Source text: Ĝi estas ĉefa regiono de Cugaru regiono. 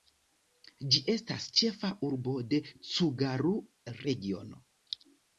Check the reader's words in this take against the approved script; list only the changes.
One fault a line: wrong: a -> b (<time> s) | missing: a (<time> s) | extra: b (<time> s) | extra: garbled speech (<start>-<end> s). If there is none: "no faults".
wrong: regiono -> urbo (2.1 s)